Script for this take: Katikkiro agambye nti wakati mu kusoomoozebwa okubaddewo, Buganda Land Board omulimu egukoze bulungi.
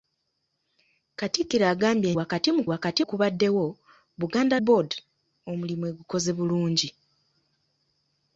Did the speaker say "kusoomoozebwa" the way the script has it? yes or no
no